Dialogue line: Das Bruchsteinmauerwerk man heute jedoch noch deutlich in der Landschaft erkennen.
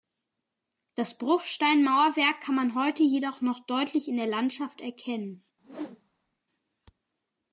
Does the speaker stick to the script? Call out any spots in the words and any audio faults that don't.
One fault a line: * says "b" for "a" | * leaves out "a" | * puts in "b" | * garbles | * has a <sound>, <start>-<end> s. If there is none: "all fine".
* puts in "kann"
* has a whoosh, 5.6-6.4 s